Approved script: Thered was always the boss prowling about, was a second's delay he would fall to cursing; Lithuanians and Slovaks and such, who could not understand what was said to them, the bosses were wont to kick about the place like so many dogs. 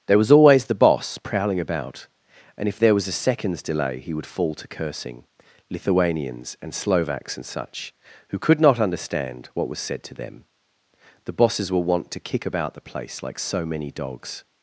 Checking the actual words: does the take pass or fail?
fail